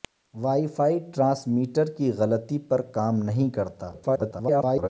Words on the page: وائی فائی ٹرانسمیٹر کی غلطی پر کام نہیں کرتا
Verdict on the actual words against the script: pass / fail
fail